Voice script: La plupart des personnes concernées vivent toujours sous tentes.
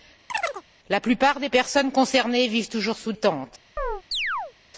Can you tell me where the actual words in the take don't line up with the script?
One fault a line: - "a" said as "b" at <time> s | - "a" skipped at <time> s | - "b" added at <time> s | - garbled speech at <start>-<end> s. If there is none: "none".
none